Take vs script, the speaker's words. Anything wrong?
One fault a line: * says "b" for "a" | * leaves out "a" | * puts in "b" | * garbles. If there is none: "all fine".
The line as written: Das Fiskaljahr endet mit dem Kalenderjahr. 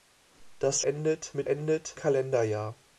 * leaves out "Fiskaljahr"
* says "endet" for "dem"